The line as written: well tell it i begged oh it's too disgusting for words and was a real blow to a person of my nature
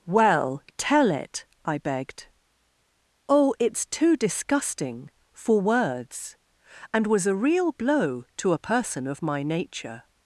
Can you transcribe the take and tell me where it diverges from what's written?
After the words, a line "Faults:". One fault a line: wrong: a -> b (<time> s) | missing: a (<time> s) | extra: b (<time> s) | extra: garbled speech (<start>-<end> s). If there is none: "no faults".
well tell it i begged oh it's too disgusting for words and was a real blow to a person of my nature
Faults:
no faults